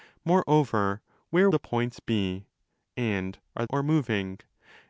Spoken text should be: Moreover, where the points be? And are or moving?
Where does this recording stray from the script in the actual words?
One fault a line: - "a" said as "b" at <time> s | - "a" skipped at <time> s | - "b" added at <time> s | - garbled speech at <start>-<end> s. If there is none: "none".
none